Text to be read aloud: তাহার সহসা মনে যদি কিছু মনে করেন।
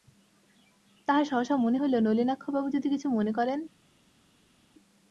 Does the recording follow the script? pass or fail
fail